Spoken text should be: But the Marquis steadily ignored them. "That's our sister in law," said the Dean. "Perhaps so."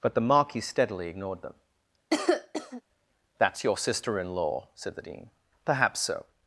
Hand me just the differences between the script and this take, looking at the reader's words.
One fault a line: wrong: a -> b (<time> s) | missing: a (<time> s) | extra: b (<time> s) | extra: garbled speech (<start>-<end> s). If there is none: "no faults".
wrong: our -> your (3.6 s)